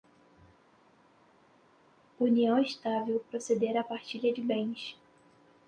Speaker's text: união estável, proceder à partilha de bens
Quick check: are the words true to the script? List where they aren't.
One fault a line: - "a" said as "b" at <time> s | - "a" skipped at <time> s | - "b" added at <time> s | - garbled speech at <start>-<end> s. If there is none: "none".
none